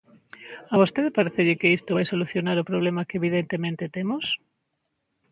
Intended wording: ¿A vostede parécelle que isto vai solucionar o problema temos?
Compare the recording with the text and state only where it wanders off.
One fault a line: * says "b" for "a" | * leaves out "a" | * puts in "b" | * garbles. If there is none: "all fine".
* puts in "que evidentemente"